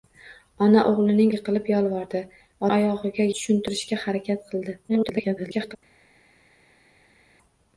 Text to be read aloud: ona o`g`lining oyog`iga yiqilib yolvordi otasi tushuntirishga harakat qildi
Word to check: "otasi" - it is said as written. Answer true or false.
false